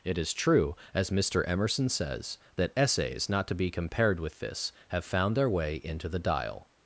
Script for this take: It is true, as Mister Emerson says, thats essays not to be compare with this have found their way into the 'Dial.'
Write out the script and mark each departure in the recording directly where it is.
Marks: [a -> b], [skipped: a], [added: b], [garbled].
It is true, as Mister Emerson says, [thats -> that] essays not to be [compare -> compared] with this have found their way into the 'Dial.'